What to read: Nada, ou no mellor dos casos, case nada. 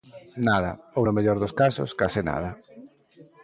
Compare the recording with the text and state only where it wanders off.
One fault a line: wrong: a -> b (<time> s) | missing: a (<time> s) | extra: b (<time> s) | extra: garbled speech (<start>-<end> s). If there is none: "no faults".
no faults